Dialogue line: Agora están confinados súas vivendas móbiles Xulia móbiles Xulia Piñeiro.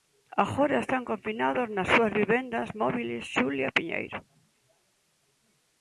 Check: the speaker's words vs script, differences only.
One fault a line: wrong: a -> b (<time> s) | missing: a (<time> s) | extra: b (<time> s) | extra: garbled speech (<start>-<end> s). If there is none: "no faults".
extra: nas (1.8 s)
missing: móbiles Xulia (3.7 s)